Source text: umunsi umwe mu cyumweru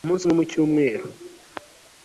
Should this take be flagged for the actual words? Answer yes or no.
no